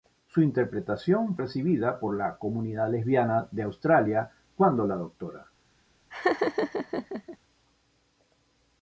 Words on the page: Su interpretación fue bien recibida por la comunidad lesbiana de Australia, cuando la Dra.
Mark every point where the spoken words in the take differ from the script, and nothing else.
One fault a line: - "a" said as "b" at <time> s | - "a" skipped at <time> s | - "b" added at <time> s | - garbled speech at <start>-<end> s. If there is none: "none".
- "fue bien" skipped at 1.4 s